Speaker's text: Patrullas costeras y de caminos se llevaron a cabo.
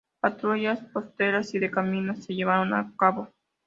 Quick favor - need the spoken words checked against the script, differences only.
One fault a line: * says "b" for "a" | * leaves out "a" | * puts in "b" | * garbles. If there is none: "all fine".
all fine